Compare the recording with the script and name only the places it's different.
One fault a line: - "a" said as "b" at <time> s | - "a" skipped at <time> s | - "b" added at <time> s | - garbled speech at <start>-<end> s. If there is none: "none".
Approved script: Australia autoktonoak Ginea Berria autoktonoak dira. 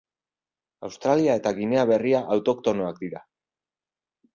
- "autoktonoak" said as "eta" at 1.4 s